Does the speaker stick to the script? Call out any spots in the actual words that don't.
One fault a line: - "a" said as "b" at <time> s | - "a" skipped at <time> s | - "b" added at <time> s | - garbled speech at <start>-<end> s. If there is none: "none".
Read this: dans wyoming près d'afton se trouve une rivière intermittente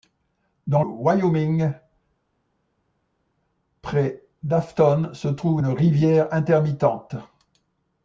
none